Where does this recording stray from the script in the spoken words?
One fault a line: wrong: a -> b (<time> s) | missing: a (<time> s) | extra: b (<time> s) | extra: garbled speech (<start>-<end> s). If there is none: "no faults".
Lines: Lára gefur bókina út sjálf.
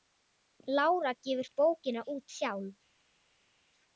no faults